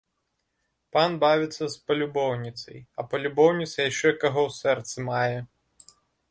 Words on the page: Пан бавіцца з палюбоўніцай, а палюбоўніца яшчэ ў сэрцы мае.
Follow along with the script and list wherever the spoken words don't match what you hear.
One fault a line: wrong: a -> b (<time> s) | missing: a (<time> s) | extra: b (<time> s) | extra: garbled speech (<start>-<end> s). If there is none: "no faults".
extra: каго (4.2 s)